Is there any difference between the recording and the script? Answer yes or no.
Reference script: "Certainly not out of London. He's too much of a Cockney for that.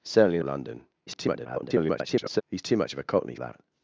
yes